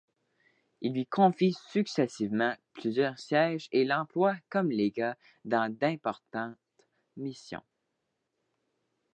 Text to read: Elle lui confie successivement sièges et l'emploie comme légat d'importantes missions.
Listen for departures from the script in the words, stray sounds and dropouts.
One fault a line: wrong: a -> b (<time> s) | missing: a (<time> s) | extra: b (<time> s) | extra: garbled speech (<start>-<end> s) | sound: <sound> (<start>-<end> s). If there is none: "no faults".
wrong: Elle -> Il (0.8 s)
extra: plusieurs (2.7 s)
extra: dans (5.4 s)